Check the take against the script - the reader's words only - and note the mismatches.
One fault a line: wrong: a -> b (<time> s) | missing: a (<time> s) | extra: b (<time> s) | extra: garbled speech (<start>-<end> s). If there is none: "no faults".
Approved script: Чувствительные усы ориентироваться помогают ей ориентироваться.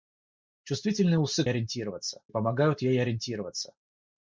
no faults